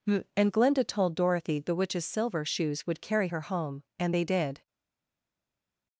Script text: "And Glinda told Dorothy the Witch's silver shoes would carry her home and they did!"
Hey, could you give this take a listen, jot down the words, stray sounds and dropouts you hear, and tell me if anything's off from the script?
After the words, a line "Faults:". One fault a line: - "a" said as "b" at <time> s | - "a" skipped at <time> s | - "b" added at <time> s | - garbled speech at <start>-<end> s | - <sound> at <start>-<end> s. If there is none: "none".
"And Glinda told Dorothy the Witch's silver shoes would carry her home and they did!"
Faults:
none